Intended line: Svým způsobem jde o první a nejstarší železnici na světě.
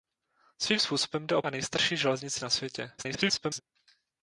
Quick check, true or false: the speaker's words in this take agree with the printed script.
false